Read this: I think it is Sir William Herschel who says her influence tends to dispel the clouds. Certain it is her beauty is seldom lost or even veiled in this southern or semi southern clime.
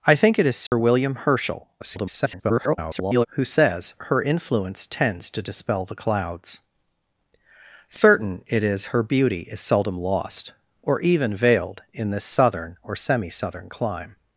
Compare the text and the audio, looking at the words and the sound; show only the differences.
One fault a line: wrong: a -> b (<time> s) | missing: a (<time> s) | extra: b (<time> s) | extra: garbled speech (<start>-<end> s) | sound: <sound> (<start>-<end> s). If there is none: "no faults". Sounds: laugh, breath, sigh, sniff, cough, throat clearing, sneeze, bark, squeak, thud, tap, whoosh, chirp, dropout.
sound: dropout (0.7-0.7 s)
extra: garbled speech (1.8-3.3 s)